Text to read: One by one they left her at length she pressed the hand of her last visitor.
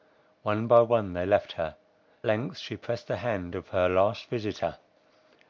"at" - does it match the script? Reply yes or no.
no